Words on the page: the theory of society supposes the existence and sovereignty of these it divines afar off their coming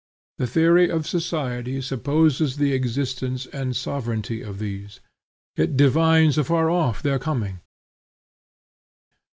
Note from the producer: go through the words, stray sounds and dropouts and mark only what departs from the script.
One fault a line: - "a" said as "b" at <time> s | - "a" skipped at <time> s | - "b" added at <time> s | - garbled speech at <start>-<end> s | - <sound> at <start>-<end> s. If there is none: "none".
none